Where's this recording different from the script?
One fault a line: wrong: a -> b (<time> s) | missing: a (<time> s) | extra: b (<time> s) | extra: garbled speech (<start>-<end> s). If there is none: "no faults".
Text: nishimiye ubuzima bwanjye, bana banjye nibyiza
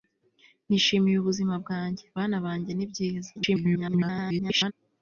extra: garbled speech (3.4-4.7 s)